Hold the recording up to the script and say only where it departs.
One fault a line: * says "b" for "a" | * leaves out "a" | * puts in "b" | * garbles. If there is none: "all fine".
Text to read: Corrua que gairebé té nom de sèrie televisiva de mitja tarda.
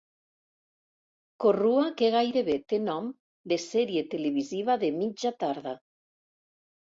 all fine